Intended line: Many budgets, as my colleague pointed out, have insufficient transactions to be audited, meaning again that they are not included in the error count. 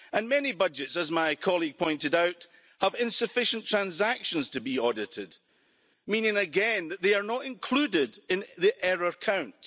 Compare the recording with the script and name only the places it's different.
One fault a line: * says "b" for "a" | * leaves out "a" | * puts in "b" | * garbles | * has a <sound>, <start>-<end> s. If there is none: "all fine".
all fine